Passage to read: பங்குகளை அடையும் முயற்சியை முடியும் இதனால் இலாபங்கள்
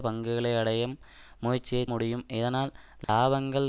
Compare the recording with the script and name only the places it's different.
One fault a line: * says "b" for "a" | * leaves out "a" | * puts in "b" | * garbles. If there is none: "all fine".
all fine